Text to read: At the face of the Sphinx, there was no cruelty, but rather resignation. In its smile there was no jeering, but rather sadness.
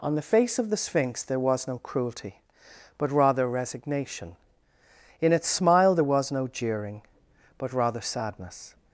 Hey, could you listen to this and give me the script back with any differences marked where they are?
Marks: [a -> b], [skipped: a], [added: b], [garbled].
[At -> On] the face of the Sphinx, there was no cruelty, but rather resignation. In its smile there was no jeering, but rather sadness.